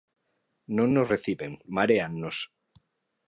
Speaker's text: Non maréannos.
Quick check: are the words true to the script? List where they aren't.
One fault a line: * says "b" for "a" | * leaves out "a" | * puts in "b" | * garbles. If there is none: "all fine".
* puts in "nos reciben"